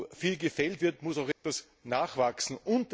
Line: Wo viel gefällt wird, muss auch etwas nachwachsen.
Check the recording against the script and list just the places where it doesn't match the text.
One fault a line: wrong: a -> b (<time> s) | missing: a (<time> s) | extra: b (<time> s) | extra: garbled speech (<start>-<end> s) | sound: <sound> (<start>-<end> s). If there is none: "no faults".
sound: dropout (1.3-1.4 s)